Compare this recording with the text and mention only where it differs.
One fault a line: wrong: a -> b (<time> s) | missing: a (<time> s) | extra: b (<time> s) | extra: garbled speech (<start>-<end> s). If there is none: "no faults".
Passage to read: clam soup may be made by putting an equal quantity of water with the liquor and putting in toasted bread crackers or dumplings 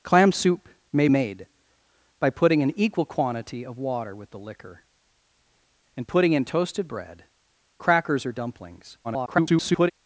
missing: be (1.1 s)
extra: garbled speech (9.0-9.9 s)